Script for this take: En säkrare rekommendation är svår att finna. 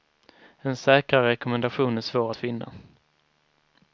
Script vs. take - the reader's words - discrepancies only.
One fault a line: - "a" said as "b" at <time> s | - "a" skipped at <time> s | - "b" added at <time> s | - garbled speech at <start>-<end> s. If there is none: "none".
none